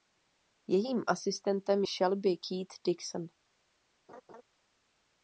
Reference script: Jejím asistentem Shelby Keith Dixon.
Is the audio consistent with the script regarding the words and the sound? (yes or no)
no